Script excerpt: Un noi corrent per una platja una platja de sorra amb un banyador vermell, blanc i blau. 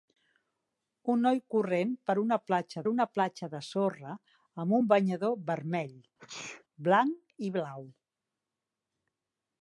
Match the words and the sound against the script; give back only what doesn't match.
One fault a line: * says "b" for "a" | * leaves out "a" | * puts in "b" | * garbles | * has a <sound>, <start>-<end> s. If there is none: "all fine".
* has a sneeze, 6.2-6.6 s